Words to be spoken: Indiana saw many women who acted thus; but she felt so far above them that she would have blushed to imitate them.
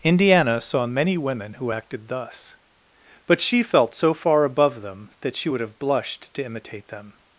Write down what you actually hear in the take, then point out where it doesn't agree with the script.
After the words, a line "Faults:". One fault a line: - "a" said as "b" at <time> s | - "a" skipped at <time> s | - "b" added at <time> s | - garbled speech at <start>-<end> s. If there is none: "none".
Indiana saw many women who acted thus; but she felt so far above them that she would have blushed to imitate them.
Faults:
none